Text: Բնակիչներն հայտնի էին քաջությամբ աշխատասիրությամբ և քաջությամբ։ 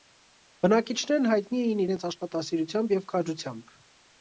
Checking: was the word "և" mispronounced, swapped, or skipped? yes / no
no